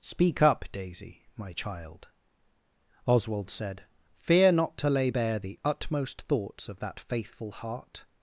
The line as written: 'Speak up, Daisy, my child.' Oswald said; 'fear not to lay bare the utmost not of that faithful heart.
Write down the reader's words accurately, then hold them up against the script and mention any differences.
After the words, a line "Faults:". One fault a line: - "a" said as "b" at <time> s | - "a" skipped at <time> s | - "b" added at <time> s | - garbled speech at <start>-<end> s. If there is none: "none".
'Speak up, Daisy, my child.' Oswald said; 'fear not to lay bare the utmost thoughts of that faithful heart.
Faults:
- "not" said as "thoughts" at 6.2 s